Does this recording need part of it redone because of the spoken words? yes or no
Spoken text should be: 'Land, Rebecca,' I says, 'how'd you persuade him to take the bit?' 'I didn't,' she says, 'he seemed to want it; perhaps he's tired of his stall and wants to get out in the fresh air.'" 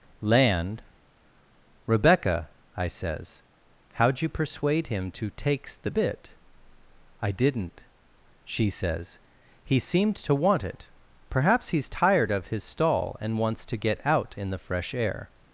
yes